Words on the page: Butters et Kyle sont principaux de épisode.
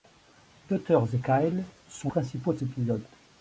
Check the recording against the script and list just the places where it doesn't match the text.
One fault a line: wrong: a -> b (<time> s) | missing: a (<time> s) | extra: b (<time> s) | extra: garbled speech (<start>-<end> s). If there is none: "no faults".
no faults